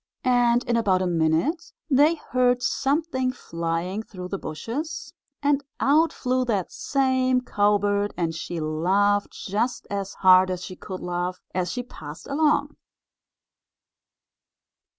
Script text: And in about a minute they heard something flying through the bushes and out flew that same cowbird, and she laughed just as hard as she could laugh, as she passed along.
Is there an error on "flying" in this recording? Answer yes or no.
no